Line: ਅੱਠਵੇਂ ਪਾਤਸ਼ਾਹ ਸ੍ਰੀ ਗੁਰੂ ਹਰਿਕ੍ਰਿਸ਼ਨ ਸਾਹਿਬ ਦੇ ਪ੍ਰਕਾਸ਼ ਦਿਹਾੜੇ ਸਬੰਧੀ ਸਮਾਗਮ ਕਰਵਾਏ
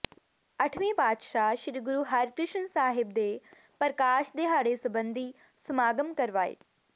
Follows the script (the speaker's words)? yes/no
yes